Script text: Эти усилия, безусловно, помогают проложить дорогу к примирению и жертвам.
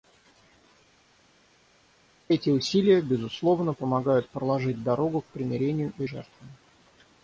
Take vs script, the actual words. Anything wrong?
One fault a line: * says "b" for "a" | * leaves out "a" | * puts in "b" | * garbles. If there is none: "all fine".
all fine